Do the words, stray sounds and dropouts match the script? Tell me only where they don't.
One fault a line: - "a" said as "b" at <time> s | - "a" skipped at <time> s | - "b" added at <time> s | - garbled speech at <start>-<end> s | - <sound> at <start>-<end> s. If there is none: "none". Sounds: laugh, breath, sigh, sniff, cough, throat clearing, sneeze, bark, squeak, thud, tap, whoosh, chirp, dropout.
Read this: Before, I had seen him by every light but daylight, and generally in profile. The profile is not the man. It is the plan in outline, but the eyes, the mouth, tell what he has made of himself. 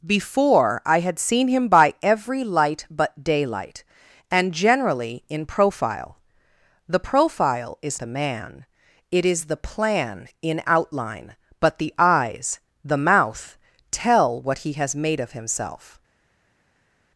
- "not" skipped at 8.0 s